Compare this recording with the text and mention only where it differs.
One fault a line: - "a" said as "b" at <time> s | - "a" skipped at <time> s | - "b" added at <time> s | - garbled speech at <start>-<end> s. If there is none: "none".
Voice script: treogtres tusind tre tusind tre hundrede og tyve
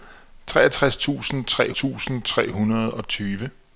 none